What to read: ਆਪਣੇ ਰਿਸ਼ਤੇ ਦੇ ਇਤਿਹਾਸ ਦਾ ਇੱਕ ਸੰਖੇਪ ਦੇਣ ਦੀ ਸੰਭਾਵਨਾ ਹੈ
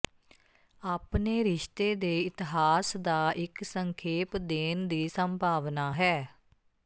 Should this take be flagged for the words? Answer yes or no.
no